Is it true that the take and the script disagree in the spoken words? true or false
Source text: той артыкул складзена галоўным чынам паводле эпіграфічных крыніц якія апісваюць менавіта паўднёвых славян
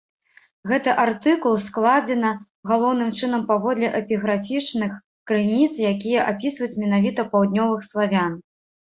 true